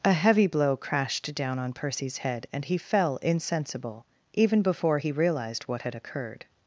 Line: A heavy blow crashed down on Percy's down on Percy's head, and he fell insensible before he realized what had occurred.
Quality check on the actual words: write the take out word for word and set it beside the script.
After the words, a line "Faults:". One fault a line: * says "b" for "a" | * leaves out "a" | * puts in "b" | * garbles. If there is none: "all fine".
A heavy blow crashed down on Percy's head, and he fell insensible even before he realized what had occurred.
Faults:
* leaves out "down on Percy's"
* puts in "even"